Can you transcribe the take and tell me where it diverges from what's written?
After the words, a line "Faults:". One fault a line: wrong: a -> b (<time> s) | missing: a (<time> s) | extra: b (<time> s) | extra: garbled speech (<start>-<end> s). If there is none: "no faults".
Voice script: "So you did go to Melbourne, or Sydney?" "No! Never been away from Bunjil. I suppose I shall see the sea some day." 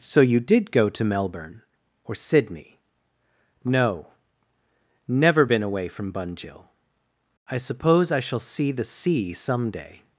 "So you did go to Melbourne, or Sydney?" "No! Never been away from Bunjil. I suppose I shall see the sea some day."
Faults:
no faults